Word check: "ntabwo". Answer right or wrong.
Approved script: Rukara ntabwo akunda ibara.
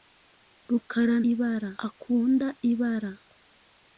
wrong